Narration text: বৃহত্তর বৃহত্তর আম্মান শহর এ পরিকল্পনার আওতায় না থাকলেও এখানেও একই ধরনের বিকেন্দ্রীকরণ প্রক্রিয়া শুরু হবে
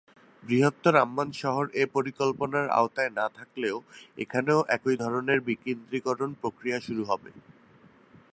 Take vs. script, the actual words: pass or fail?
fail